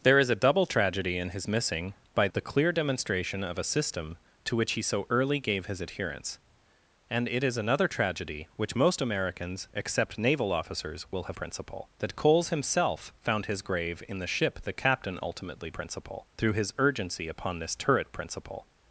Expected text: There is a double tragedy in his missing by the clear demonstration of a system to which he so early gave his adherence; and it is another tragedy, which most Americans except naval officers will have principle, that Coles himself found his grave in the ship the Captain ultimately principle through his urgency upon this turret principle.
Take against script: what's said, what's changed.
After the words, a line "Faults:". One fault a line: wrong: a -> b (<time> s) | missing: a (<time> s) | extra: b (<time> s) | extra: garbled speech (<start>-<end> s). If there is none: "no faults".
There is a double tragedy in his missing by the clear demonstration of a system to which he so early gave his adherence; and it is another tragedy, which most Americans except naval officers will have principle, that Coles himself found his grave in the ship the Captain ultimately principle through his urgency upon this turret principle.
Faults:
no faults